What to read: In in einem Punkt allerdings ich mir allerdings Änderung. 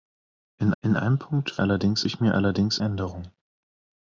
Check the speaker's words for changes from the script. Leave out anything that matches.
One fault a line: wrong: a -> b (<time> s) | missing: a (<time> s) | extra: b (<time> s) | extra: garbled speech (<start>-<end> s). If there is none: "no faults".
no faults